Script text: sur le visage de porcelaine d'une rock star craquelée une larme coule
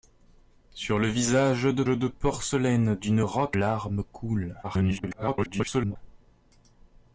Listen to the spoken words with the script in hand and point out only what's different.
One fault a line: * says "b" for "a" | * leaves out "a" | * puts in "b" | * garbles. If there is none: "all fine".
* puts in "de"
* leaves out "star craquelée une"
* garbles